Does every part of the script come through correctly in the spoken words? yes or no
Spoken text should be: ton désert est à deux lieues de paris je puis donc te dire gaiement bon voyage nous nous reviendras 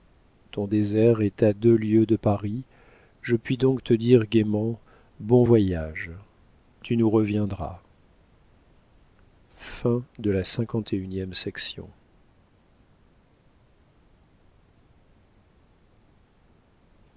no